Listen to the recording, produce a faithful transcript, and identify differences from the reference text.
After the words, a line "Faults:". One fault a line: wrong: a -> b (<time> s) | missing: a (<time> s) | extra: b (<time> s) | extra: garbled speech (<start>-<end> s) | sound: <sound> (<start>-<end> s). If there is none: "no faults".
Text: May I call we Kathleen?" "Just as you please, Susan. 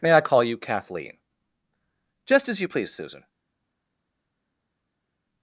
May I call you Kathleen?" "Just as you please, Susan.
Faults:
wrong: we -> you (0.4 s)